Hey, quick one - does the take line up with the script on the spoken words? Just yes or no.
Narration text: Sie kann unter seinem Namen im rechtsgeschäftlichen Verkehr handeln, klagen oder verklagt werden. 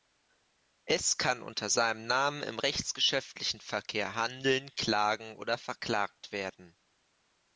no